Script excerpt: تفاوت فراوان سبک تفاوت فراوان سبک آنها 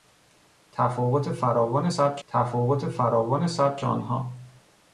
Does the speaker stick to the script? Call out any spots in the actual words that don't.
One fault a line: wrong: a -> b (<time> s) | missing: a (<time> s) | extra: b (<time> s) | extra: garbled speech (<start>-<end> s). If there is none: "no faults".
no faults